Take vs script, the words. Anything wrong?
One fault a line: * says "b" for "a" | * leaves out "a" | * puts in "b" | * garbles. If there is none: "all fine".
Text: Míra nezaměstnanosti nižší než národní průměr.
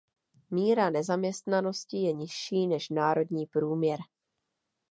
* puts in "je"